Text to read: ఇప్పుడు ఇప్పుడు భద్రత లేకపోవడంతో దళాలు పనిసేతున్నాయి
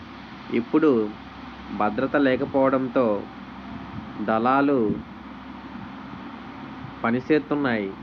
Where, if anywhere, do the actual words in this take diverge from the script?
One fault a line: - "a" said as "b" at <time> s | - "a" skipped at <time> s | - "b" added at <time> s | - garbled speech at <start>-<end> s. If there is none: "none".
- "ఇప్పుడు" skipped at 0.9 s